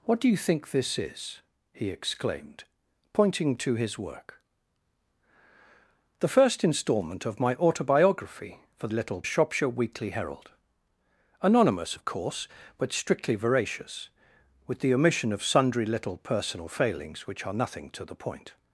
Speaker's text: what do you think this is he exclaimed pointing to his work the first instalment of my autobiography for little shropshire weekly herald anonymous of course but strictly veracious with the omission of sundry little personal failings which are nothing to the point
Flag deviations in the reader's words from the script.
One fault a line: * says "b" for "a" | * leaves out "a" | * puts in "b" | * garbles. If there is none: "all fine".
all fine